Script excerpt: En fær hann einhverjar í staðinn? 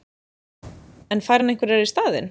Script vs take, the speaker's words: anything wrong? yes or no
no